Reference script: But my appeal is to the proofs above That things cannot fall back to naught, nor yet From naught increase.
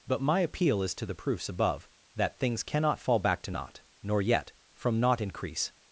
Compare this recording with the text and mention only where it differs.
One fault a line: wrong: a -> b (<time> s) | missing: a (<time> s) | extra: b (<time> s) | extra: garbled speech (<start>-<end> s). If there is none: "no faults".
no faults